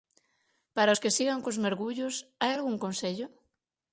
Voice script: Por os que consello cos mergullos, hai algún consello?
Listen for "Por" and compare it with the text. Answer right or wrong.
wrong